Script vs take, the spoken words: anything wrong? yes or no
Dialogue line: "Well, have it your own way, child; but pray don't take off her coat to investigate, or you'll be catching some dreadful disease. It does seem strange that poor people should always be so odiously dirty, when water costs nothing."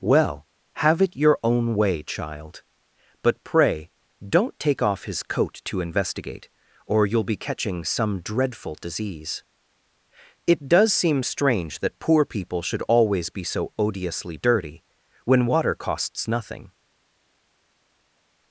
yes